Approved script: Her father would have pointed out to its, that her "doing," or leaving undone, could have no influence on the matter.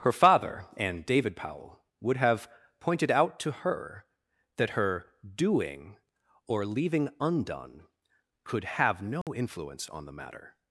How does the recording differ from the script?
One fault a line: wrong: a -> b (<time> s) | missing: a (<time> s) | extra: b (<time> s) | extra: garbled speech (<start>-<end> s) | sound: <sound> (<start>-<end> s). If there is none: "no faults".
extra: and David Powell (0.8 s)
wrong: its -> her (3.5 s)
sound: dropout (9.2-9.3 s)